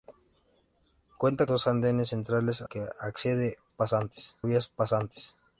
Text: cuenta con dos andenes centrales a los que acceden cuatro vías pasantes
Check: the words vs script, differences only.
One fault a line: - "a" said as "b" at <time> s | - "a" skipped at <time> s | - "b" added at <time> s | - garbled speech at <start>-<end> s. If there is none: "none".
- "con" skipped at 1.4 s
- "los" skipped at 2.7 s
- "cuatro" said as "pasantes" at 3.7 s